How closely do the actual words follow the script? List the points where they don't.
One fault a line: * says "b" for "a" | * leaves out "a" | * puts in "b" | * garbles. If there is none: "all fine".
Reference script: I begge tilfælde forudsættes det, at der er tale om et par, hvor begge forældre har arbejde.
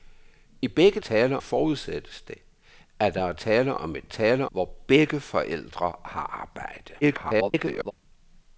* says "tale" for "tilfælde"
* says "tale" for "par"
* garbles